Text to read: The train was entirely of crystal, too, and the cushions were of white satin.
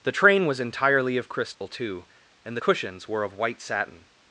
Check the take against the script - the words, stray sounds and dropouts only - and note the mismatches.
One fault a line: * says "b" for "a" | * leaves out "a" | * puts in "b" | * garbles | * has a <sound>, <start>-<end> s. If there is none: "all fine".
* has a dropout, 1.5-1.6 s